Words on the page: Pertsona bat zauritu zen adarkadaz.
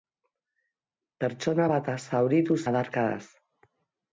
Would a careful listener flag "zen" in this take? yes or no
yes